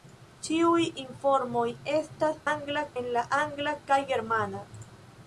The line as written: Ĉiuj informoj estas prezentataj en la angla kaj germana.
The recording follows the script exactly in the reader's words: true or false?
false